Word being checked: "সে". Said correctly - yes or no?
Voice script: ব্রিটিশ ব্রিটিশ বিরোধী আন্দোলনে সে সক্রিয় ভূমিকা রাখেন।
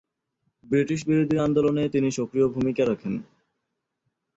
no